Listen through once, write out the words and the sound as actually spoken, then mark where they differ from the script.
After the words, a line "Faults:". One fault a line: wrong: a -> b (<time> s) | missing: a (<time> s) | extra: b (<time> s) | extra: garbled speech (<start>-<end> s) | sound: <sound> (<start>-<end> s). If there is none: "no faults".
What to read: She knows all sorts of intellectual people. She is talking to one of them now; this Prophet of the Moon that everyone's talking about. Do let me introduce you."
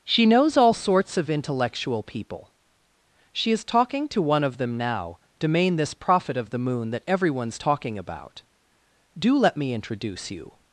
She knows all sorts of intellectual people. She is talking to one of them now; domain this Prophet of the Moon that everyone's talking about. Do let me introduce you."
Faults:
extra: domain (5.4 s)